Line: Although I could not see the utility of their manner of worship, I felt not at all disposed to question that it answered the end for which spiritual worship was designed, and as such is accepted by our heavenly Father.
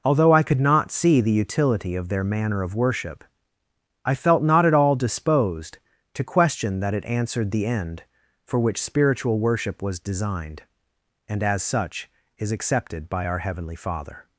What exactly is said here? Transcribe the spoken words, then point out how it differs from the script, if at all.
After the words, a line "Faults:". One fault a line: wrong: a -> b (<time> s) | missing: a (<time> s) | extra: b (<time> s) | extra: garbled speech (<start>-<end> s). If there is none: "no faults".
Although I could not see the utility of their manner of worship, I felt not at all disposed to question that it answered the end for which spiritual worship was designed, and as such is accepted by our heavenly Father.
Faults:
no faults